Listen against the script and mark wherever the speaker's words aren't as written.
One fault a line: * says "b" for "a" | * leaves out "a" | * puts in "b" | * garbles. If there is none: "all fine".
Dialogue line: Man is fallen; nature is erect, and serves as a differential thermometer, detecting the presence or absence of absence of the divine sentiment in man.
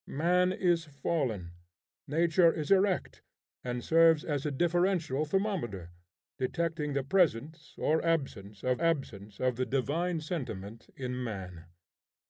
all fine